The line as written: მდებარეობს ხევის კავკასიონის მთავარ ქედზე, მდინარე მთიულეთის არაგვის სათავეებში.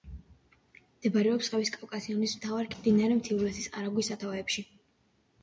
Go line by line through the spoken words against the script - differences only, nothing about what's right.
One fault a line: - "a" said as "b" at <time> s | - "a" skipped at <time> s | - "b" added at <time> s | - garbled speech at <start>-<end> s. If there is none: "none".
- "ქედზე" skipped at 2.7 s